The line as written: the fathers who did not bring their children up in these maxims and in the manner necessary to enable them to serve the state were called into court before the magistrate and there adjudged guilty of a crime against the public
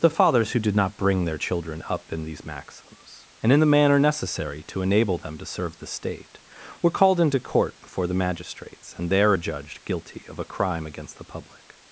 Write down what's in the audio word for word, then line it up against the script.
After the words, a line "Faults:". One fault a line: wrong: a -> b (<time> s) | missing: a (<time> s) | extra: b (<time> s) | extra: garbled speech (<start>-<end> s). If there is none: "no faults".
the fathers who did not bring their children up in these maxims and in the manner necessary to enable them to serve the state were called into court before the magistrates and there adjudged guilty of a crime against the public
Faults:
wrong: magistrate -> magistrates (8.1 s)